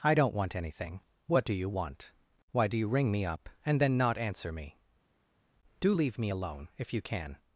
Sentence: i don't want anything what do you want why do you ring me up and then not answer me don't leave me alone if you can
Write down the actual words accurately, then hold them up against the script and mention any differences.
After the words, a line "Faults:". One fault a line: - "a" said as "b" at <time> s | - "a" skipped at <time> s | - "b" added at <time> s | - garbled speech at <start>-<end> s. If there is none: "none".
i don't want anything what do you want why do you ring me up and then not answer me do leave me alone if you can
Faults:
- "don't" said as "do" at 5.8 s